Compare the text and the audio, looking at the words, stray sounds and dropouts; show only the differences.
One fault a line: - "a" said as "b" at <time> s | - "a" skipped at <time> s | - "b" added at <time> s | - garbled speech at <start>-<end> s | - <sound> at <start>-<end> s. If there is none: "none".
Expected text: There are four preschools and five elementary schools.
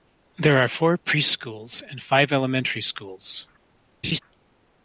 - laugh at 4.0-4.2 s